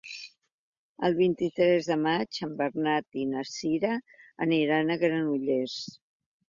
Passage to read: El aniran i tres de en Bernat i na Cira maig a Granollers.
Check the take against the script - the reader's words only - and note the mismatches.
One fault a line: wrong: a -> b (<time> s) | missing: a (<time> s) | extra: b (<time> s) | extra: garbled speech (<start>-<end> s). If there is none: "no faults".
wrong: aniran -> vint (1.2 s)
extra: maig (2.1 s)
wrong: maig -> aniran (4.5 s)